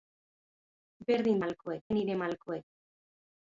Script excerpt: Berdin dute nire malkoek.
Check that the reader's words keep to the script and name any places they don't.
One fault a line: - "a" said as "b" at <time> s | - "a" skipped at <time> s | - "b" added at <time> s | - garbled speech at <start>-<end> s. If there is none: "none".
- "dute" said as "malkoek" at 1.4 s